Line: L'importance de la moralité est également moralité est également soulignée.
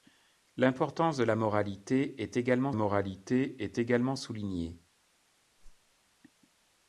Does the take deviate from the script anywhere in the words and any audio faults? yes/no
yes